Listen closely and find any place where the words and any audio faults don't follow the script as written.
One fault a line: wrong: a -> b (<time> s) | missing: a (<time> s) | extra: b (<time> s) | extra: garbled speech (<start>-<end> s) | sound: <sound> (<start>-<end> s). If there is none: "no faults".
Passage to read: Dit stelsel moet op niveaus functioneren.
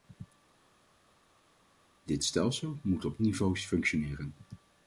no faults